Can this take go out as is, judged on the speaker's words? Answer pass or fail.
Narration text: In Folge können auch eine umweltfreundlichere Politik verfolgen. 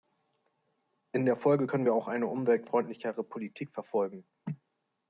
fail